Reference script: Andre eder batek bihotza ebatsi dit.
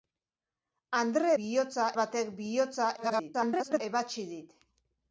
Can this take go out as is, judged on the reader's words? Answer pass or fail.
fail